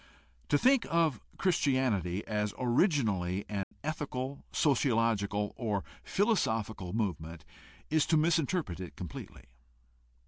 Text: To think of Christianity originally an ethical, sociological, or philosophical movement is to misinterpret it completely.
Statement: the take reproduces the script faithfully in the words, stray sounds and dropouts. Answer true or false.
false